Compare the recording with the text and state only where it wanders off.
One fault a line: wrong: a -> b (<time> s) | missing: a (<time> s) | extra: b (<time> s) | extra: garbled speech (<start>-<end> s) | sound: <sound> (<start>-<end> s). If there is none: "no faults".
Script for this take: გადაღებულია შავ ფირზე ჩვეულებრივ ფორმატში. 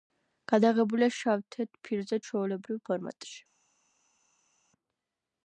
extra: თეთრ (1.6 s)